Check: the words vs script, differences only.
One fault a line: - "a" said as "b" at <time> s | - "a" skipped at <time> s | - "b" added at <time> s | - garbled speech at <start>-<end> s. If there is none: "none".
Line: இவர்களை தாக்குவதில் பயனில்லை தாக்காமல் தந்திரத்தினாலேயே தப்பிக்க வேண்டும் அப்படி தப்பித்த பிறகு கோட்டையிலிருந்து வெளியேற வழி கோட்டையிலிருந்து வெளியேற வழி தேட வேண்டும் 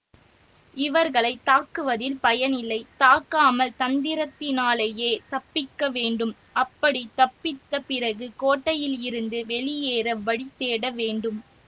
- "கோட்டையிலிருந்து வெளியேற வழி" skipped at 10.5 s